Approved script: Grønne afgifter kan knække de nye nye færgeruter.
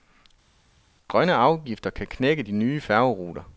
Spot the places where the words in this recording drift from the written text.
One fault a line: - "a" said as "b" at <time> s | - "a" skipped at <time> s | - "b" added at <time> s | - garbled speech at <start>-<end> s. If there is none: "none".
- "nye" skipped at 2.8 s